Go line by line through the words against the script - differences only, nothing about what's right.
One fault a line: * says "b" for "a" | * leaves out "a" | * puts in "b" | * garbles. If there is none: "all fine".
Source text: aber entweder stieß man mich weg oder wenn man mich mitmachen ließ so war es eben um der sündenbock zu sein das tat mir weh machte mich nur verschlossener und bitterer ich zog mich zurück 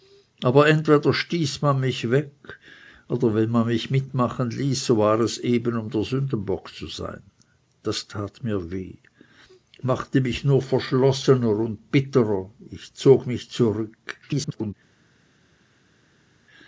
* garbles